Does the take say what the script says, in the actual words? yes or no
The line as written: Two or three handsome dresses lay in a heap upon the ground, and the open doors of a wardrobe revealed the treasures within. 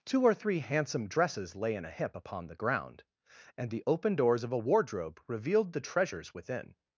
no